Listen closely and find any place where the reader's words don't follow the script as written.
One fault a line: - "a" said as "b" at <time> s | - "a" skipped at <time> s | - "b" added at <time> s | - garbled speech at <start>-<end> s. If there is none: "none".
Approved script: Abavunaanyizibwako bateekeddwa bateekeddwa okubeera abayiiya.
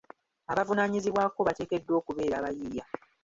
- "bateekeddwa" skipped at 1.9 s